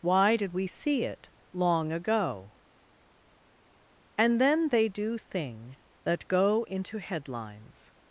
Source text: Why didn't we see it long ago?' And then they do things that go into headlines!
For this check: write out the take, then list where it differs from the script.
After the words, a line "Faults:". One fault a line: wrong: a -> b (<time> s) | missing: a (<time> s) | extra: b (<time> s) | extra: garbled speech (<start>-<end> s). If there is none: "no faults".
Why did we see it long ago?' And then they do thing that go into headlines!
Faults:
wrong: didn't -> did (0.3 s)
wrong: things -> thing (5.2 s)